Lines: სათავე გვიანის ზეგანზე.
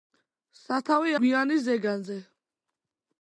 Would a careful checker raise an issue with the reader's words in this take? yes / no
no